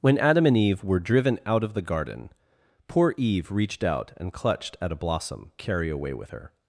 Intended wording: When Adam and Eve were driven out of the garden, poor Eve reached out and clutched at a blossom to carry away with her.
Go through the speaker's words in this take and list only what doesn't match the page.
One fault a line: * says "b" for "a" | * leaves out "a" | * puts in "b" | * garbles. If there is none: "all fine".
* leaves out "to"